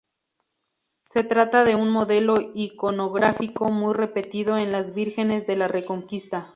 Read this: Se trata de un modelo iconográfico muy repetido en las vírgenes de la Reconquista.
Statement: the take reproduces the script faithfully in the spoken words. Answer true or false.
true